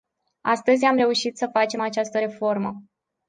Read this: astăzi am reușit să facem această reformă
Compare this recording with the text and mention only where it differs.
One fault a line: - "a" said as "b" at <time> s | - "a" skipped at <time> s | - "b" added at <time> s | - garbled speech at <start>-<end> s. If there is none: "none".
none